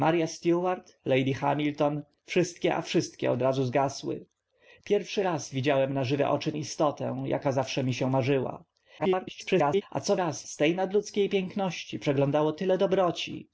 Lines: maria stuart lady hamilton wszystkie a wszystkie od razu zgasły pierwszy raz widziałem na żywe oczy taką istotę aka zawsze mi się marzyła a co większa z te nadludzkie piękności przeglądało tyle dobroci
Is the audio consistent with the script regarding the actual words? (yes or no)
no